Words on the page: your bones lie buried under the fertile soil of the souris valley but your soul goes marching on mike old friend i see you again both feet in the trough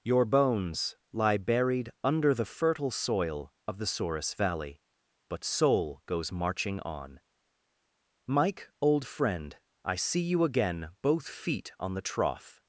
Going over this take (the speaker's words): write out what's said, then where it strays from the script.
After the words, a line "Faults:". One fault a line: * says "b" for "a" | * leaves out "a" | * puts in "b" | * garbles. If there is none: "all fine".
your bones lie buried under the fertile soil of the souris valley but soul goes marching on mike old friend i see you again both feet on the trough
Faults:
* leaves out "your"
* says "on" for "in"